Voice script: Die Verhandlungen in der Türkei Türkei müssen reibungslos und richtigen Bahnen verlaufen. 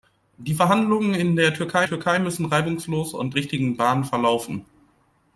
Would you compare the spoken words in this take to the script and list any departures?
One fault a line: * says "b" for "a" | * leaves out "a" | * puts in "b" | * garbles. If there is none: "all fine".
all fine